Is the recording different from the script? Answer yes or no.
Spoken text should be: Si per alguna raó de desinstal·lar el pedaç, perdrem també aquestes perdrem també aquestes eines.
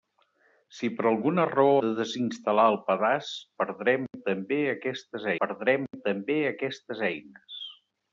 no